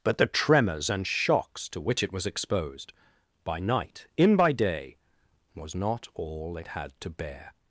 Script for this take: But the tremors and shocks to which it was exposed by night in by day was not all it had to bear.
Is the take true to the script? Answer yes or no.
yes